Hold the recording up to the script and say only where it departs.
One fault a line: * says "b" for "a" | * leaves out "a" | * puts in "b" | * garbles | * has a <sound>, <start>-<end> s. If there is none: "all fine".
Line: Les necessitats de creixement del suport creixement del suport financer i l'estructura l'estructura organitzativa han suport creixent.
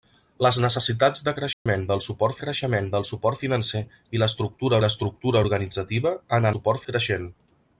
* has a dropout, 1.5-1.7 s